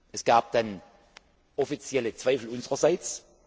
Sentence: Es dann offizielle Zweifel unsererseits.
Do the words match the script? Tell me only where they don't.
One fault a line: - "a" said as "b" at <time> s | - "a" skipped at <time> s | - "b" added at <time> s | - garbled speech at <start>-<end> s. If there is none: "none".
- "gab" added at 0.2 s